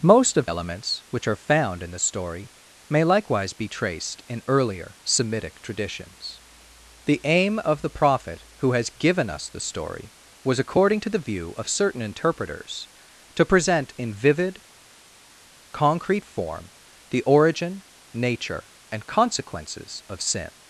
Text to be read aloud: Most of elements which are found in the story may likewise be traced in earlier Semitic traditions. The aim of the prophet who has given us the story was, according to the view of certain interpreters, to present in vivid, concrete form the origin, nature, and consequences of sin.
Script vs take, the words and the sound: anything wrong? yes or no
no